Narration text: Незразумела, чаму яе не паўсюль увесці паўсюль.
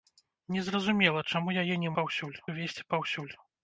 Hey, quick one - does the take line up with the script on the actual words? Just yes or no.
yes